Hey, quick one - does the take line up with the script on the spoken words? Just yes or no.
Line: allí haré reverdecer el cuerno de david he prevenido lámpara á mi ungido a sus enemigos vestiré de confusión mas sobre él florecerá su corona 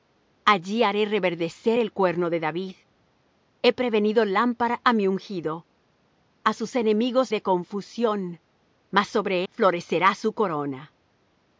no